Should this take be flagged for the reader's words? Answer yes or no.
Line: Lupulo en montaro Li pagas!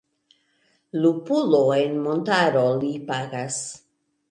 no